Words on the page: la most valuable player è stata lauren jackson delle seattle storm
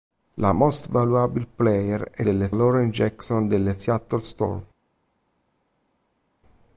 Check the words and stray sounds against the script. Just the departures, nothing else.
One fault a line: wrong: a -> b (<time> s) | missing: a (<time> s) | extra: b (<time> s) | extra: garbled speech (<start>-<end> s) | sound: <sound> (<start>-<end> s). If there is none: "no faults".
wrong: stata -> delle (2.2 s)